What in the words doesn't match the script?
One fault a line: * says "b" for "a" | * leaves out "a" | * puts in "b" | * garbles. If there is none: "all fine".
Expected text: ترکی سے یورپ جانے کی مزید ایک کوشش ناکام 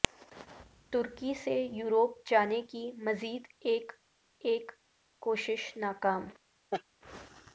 * puts in "ایک"